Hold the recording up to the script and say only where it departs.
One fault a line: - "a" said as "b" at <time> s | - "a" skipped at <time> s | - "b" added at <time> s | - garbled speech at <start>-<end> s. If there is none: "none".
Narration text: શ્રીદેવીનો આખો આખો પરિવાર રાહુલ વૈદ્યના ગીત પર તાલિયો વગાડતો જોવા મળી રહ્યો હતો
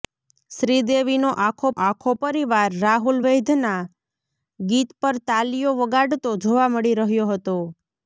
none